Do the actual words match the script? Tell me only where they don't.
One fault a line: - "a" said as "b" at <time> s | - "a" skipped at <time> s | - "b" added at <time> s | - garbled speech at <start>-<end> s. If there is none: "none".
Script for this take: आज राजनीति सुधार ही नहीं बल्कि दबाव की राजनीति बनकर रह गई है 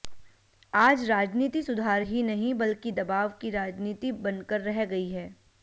none